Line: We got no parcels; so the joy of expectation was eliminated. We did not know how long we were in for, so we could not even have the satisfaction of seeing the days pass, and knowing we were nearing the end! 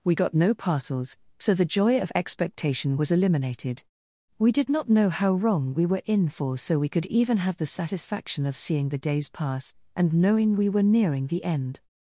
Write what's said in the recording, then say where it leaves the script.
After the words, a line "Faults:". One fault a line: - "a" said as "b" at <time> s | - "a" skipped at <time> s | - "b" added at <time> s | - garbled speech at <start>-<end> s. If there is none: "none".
We got no parcels; so the joy of expectation was eliminated. We did not know how wrong we were in for, so we could even have the satisfaction of seeing the days pass, and knowing we were nearing the end!
Faults:
- "long" said as "wrong" at 5.3 s
- "not" skipped at 7.0 s